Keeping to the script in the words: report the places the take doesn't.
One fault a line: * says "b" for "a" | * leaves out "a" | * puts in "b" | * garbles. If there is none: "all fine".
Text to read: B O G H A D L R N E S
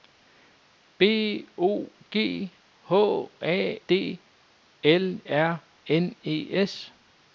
all fine